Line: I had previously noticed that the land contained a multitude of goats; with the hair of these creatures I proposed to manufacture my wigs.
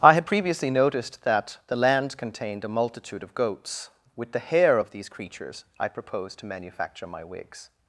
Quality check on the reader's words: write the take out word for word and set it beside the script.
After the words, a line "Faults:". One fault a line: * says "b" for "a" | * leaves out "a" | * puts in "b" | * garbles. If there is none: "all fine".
I had previously noticed that the land contained a multitude of goats; with the hair of these creatures I proposed to manufacture my wigs.
Faults:
all fine